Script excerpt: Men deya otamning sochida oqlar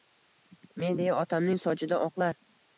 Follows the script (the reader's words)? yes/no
yes